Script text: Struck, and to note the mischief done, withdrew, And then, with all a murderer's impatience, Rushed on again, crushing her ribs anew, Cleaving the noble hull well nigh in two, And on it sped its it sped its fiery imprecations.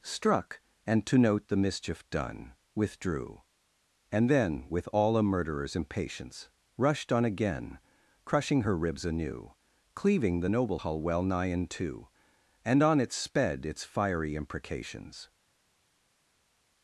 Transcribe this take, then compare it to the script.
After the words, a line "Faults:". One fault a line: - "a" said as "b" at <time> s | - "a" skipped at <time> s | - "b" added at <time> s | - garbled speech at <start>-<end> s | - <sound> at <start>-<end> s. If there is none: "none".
Struck, and to note the mischief done, withdrew, And then, with all a murderer's impatience, Rushed on again, crushing her ribs anew, Cleaving the noble hull well nigh in two, And on it sped its fiery imprecations.
Faults:
- "it sped its" skipped at 13.8 s